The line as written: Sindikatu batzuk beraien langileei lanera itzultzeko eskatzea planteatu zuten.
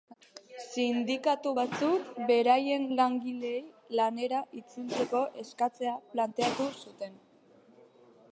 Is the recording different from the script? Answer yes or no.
no